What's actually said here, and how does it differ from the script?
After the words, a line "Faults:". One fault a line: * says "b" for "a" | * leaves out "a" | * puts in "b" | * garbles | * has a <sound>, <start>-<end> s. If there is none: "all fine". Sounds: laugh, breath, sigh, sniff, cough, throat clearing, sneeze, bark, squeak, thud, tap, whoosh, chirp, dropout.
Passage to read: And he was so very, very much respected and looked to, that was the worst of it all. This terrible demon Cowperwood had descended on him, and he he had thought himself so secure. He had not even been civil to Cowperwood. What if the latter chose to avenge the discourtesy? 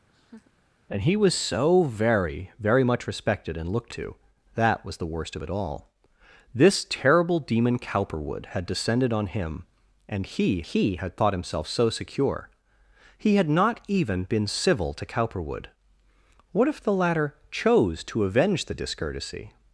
And he was so very, very much respected and looked to, that was the worst of it all. This terrible demon Cowperwood had descended on him, and he he had thought himself so secure. He had not even been civil to Cowperwood. What if the latter chose to avenge the discourtesy?
Faults:
* has a laugh, 0.1-0.5 s